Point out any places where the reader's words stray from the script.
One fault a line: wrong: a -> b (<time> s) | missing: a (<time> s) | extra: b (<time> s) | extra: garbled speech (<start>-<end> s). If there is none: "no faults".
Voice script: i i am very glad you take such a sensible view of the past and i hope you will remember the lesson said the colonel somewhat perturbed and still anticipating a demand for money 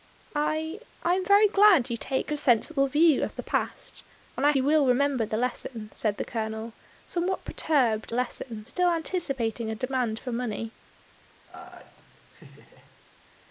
missing: such (2.3 s)
missing: hope (4.5 s)
wrong: and -> lesson (8.1 s)